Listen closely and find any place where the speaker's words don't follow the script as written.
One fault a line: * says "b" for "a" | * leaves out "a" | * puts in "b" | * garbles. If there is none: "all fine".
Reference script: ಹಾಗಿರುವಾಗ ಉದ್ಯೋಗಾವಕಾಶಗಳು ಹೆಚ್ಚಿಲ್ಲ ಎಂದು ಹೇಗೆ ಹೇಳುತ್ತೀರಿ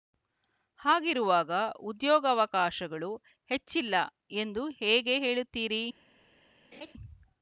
all fine